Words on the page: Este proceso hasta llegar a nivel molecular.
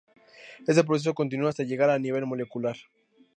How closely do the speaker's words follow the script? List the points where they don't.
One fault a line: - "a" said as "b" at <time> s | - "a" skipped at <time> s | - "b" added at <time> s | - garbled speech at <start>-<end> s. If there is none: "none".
- "continúa" added at 1.1 s